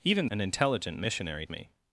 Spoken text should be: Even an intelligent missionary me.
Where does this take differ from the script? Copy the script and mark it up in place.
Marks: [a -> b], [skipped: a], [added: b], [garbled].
Even an intelligent missionary me.